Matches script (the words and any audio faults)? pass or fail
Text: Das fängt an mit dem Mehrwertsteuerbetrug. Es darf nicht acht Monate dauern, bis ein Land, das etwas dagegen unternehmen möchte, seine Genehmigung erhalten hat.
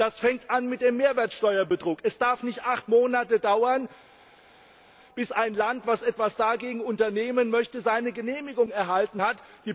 pass